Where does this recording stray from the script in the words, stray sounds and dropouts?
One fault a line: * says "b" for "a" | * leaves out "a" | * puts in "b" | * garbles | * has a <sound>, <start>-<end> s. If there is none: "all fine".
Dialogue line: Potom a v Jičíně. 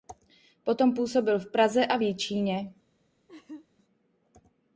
* puts in "působil v Praze"
* has a laugh, 3.3-3.7 s